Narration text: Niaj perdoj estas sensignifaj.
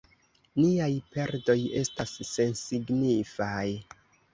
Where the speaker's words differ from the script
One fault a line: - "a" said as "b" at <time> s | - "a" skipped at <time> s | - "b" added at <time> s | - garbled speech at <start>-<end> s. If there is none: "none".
none